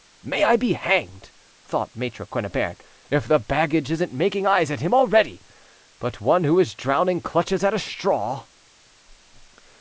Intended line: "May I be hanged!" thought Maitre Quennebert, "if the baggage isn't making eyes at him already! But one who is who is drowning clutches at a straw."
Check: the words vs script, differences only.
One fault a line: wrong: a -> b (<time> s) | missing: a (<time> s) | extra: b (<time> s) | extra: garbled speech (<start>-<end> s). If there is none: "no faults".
missing: who is (6.7 s)